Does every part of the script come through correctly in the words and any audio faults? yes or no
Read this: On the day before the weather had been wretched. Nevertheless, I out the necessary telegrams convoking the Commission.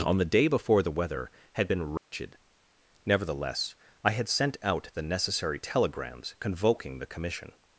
no